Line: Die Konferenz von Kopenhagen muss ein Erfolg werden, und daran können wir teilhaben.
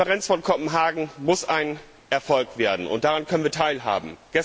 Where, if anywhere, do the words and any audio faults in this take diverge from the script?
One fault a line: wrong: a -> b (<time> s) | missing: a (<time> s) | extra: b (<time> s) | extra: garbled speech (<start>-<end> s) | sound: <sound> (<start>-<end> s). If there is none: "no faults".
no faults